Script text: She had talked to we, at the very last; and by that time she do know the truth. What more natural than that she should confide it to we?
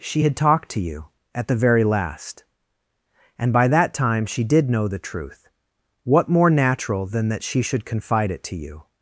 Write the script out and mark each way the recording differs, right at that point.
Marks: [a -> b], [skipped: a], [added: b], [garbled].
She had talked to [we, -> you] at the very last; and by that time she [do -> did] know the truth. What more natural than that she should confide it to [we? -> you]